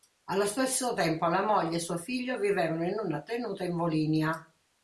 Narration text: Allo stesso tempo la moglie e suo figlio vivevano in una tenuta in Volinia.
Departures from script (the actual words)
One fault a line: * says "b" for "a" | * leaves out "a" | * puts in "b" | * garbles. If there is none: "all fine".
all fine